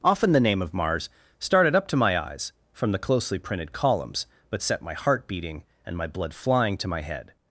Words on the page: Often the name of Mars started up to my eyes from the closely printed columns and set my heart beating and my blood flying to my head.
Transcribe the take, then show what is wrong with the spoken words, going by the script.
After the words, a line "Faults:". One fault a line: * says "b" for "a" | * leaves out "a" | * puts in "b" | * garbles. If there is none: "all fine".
Often the name of Mars started up to my eyes from the closely printed columns but set my heart beating and my blood flying to my head.
Faults:
* says "but" for "and"